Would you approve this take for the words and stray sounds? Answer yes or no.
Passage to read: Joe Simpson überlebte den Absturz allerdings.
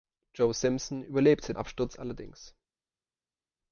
no